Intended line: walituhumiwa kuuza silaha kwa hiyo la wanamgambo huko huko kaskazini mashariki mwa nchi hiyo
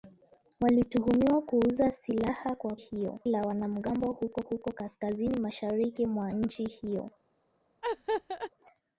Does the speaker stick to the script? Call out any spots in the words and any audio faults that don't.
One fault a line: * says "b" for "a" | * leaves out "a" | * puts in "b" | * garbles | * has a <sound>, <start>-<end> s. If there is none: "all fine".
* has a laugh, 7.8-8.5 s